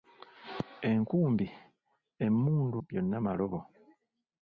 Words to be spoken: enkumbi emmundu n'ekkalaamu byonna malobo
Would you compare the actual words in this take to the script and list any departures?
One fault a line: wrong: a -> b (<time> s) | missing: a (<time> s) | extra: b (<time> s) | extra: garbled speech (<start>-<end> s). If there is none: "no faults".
missing: n'ekkalaamu (2.8 s)